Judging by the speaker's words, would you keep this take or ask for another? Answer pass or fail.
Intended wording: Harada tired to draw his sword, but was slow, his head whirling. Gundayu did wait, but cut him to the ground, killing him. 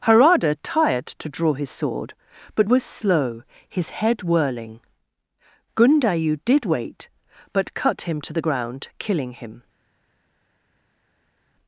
pass